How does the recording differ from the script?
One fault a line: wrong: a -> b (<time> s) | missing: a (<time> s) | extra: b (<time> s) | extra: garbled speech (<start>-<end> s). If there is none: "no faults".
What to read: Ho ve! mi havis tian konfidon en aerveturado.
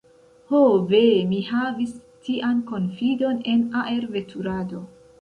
no faults